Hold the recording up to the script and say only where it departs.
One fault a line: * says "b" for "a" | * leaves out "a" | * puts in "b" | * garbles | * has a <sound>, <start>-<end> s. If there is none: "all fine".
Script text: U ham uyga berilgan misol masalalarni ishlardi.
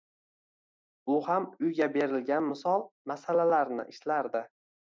all fine